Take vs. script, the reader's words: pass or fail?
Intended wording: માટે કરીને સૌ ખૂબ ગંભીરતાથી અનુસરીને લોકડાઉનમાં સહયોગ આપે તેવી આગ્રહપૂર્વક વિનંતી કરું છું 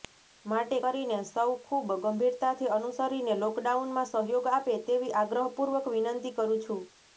pass